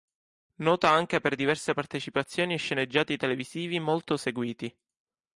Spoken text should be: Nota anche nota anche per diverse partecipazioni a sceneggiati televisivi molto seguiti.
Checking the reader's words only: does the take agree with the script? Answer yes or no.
no